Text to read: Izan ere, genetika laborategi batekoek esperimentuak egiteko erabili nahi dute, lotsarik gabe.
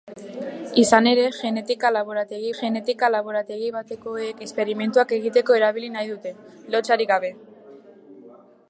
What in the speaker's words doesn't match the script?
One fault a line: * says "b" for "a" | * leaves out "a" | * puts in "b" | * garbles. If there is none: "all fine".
* puts in "genetika laborategi"